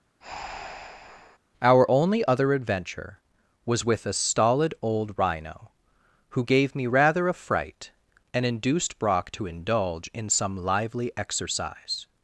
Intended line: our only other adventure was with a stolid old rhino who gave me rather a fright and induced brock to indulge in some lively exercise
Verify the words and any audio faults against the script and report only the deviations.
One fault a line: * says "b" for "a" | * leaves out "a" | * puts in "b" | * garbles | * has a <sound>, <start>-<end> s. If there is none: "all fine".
* has a breath, 0.2-1.4 s